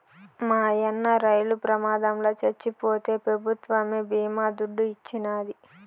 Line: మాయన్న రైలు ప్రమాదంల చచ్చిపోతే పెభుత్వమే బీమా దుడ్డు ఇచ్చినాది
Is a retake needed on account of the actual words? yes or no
no